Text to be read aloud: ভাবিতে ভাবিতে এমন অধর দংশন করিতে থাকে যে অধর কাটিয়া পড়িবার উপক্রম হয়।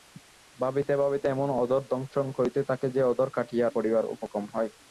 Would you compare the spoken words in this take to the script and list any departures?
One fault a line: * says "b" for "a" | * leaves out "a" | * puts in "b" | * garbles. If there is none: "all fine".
all fine